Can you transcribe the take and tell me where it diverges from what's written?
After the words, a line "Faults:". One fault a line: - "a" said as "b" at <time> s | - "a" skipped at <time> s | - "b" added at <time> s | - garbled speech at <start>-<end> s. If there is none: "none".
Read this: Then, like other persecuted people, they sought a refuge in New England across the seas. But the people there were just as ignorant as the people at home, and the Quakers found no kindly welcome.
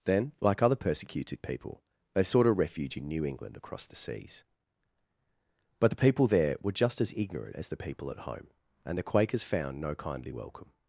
Then, like other persecuted people, they sought a refuge in New England across the seas. But the people there were just as ignorant as the people at home, and the Quakers found no kindly welcome.
Faults:
none